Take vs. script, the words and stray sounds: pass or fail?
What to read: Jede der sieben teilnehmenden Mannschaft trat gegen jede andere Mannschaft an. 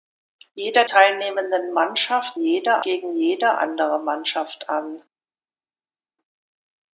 fail